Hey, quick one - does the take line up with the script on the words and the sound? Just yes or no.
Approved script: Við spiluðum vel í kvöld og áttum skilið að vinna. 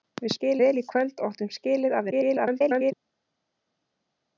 no